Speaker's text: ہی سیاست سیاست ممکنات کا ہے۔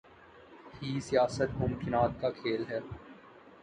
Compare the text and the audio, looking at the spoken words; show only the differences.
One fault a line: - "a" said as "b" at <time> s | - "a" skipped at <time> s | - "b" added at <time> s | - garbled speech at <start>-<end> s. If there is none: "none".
- "سیاست" skipped at 1.5 s
- "کھیل" added at 2.3 s